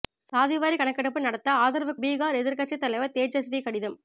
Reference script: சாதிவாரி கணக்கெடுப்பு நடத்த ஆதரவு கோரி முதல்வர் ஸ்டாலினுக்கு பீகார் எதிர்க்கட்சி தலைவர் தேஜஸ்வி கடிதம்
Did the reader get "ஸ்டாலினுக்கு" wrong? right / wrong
wrong